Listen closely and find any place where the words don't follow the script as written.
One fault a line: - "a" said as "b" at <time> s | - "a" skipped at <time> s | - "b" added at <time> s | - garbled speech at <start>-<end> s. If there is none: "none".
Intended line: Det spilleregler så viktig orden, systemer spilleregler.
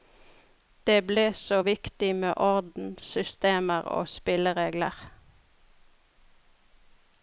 - "spilleregler" said as "ble" at 1.1 s
- "med" added at 2.1 s
- "og" added at 3.8 s